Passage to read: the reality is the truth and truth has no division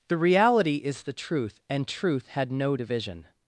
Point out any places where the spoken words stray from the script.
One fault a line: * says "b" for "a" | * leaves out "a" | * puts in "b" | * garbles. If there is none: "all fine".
* says "had" for "has"